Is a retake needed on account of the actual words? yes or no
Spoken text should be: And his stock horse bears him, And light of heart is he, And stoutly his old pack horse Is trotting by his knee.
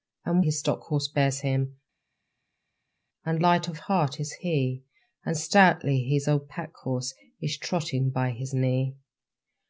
no